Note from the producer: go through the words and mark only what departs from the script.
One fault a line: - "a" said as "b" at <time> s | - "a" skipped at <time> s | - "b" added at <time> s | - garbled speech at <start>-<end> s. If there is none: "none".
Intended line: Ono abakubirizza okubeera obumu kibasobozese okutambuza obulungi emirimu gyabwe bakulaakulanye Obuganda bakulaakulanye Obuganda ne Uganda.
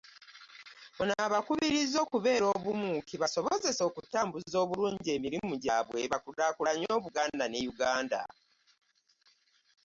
- "bakulaakulanye Obuganda" skipped at 7.4 s